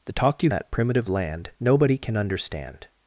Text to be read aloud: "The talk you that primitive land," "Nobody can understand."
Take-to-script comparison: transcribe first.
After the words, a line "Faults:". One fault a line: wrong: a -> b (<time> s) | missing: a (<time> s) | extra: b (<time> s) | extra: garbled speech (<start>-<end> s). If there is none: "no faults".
"The talk you that primitive land," "Nobody can understand."
Faults:
no faults